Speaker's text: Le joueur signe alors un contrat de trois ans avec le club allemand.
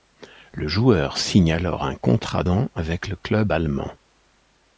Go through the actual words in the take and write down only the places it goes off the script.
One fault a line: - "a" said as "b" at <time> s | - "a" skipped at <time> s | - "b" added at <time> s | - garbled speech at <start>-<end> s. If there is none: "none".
- "de trois" skipped at 2.4 s